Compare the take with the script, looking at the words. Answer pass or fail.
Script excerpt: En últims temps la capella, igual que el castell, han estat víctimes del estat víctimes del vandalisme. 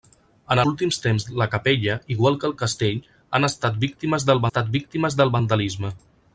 pass